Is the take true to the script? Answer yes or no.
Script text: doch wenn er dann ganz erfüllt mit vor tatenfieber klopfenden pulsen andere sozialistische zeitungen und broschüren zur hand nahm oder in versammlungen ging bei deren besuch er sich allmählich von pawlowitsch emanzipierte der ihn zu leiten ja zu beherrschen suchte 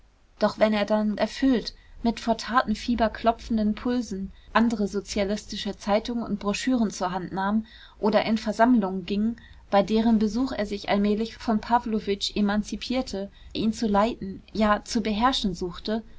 no